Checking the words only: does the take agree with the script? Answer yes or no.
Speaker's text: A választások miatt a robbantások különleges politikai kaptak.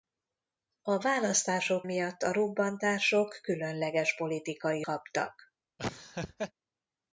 yes